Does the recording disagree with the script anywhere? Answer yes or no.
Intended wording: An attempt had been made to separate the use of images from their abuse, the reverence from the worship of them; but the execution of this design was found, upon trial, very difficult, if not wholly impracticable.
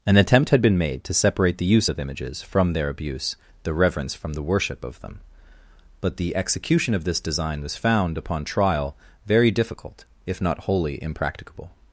no